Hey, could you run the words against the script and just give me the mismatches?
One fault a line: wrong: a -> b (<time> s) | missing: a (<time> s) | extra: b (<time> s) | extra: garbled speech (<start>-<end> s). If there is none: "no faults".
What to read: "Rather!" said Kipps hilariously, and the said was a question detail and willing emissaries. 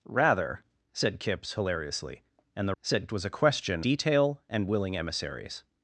no faults